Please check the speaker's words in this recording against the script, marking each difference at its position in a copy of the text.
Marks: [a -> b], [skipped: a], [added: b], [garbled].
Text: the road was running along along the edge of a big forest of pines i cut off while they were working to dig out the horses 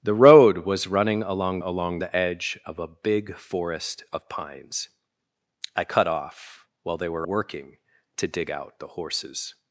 the road was running along along the edge of a big forest of pines i cut off while they were working to dig out the horses